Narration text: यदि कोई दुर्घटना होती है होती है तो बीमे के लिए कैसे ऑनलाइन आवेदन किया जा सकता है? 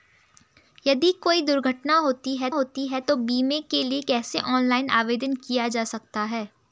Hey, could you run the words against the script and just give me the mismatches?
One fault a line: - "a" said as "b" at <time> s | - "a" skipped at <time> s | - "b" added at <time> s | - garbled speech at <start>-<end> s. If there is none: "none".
none